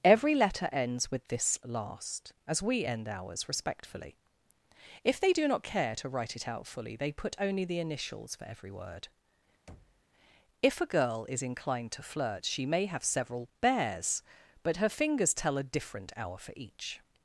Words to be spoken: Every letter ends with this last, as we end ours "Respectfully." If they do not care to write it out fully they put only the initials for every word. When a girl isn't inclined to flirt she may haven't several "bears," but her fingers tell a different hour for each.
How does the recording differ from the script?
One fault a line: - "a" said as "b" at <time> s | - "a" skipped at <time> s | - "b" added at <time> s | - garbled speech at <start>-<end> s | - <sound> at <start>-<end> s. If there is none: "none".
- thud at 9.7-10.1 s
- "When" said as "If" at 10.6 s
- "isn't" said as "is" at 11.3 s
- "haven't" said as "have" at 12.9 s